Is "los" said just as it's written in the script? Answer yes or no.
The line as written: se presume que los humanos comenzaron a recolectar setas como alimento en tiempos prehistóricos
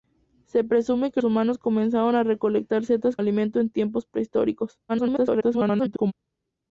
no